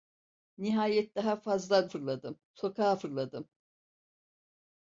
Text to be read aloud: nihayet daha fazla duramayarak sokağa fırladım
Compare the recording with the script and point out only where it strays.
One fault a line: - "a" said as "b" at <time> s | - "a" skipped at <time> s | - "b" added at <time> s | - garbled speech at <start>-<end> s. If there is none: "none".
- "duramayarak" said as "fırladım" at 1.8 s